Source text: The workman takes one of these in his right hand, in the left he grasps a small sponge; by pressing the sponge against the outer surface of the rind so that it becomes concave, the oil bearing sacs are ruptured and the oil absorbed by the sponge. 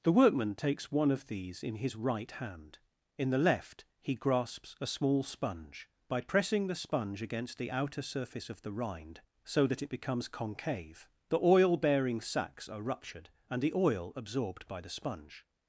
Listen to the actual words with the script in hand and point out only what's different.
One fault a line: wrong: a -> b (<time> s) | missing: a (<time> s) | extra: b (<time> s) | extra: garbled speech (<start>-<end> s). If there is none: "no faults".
no faults